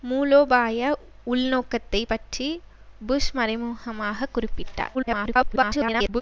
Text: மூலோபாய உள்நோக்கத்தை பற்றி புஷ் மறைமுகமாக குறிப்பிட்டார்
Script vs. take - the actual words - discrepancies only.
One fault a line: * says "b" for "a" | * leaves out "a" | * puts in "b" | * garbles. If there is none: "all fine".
* garbles